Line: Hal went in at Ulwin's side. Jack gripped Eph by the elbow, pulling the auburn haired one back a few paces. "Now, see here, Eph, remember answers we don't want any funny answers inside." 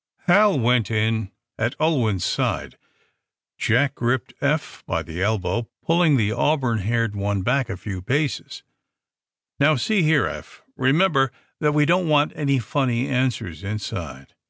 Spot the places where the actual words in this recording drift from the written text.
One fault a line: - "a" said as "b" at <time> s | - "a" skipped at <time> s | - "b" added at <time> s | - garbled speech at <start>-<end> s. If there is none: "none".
- "answers" said as "that" at 11.6 s